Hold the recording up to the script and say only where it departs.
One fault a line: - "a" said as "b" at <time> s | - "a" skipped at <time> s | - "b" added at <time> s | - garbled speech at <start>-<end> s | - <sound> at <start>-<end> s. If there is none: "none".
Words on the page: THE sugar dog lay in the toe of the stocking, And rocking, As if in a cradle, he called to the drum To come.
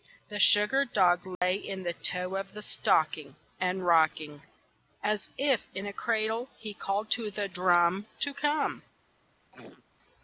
- dropout at 1.4-1.4 s
- throat clearing at 9.5-9.8 s